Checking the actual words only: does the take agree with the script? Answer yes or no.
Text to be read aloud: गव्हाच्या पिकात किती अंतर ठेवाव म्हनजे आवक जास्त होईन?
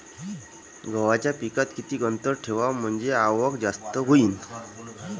yes